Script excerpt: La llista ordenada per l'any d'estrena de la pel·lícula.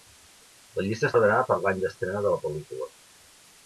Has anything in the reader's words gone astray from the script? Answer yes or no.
no